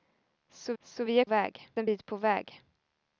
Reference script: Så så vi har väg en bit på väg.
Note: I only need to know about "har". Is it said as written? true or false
true